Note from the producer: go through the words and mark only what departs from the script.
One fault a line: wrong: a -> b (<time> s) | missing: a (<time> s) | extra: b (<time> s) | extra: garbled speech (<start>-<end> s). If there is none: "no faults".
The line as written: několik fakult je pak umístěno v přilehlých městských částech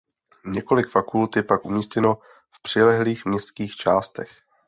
no faults